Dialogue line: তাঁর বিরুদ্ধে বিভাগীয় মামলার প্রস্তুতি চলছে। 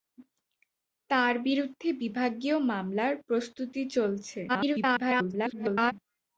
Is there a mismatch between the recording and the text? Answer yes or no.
yes